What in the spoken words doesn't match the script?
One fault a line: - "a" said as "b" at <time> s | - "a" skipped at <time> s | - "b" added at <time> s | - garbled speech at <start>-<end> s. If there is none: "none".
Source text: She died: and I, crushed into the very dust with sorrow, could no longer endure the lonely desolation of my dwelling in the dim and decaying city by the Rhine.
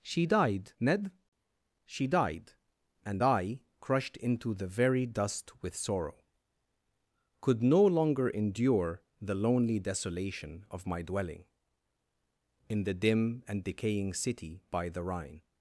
- "ned she died" added at 0.8 s